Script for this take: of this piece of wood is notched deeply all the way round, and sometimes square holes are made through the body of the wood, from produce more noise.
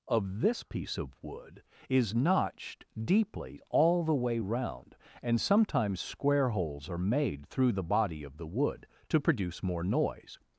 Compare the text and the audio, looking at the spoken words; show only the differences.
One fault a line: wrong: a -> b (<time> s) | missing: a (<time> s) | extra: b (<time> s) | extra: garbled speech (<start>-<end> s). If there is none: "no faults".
wrong: from -> to (9.1 s)